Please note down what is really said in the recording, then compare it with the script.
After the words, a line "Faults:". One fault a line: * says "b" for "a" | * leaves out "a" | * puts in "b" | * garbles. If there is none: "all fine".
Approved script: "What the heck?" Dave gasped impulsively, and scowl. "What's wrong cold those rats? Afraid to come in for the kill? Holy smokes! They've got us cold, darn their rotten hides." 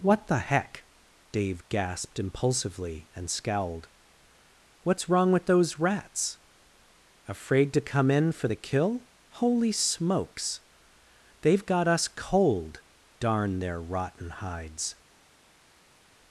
"What the heck?" Dave gasped impulsively, and scowled. "What's wrong with those rats? Afraid to come in for the kill? Holy smokes! They've got us cold, darn their rotten hides."
Faults:
* says "scowled" for "scowl"
* says "with" for "cold"